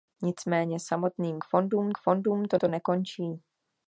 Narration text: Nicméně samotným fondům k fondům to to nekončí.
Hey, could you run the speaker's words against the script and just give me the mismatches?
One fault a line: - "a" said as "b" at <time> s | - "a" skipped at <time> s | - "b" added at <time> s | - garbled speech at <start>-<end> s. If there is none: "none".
none